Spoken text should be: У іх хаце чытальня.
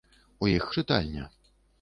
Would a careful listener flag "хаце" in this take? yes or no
yes